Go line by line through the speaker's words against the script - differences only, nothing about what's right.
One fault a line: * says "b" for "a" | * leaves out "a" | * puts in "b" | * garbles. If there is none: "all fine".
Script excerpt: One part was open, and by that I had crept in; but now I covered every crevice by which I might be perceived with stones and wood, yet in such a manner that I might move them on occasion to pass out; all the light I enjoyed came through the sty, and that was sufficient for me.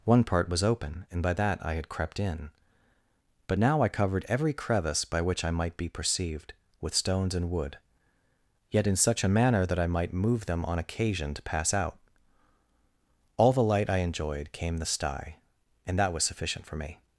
* leaves out "through"